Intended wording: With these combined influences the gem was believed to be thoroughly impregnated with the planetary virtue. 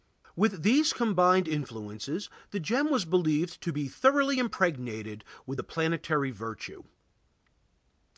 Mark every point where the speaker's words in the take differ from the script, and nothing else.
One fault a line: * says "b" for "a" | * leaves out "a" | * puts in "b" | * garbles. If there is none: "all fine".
all fine